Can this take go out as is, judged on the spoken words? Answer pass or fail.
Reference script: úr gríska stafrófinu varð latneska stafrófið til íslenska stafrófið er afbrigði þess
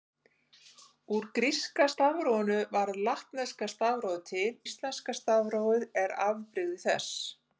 pass